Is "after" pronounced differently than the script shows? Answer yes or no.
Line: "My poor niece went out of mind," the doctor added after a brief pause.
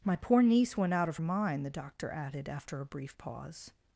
no